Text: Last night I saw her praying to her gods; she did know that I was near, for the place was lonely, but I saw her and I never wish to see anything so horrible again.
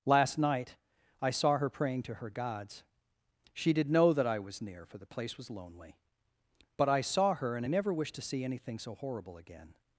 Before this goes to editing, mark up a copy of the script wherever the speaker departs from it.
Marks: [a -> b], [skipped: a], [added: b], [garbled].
Last night I saw her praying to her gods; she did know that I was near, for the place was lonely, but I saw her and I never wish to see anything so horrible again.